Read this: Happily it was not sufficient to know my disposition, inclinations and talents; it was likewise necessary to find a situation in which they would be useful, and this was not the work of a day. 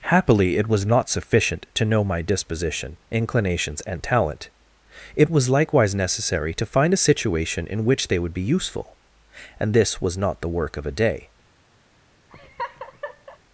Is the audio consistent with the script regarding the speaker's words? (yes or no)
no